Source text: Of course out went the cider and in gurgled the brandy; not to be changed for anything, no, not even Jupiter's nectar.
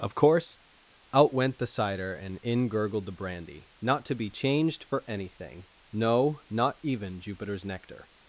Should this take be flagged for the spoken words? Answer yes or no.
no